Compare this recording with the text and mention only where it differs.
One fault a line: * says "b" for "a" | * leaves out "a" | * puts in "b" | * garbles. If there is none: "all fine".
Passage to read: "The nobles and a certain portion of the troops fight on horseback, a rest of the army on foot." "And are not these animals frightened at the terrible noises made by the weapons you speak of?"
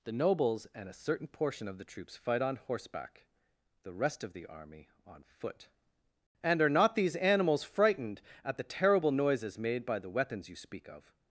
* says "the" for "a"